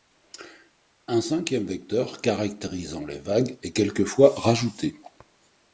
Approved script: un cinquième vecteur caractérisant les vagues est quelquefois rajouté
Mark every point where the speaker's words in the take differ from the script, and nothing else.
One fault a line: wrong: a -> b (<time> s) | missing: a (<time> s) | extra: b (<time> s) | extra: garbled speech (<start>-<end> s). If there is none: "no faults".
no faults